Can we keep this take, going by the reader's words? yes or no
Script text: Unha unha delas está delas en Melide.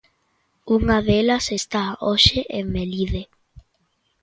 no